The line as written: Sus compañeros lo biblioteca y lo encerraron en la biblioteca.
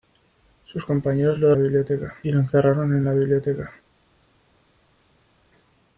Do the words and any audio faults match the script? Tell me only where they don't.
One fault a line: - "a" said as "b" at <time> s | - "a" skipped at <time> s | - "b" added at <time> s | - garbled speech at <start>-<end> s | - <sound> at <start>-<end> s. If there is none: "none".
none